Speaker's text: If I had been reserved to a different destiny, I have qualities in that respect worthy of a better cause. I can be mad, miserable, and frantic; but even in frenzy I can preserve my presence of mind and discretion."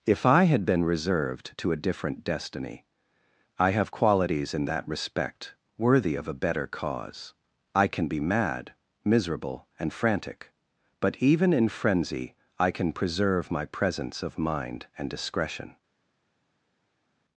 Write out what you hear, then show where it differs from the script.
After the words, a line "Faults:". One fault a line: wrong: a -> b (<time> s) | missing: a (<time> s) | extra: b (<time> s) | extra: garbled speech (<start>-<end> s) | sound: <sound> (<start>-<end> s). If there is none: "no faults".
If I had been reserved to a different destiny, I have qualities in that respect worthy of a better cause. I can be mad, miserable, and frantic; but even in frenzy I can preserve my presence of mind and discretion."
Faults:
no faults